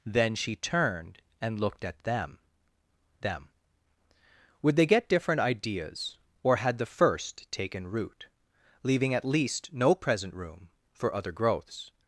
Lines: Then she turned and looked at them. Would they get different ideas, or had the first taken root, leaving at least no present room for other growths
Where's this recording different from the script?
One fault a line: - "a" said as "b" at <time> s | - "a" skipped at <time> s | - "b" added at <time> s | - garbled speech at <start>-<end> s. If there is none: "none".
- "them" added at 3.2 s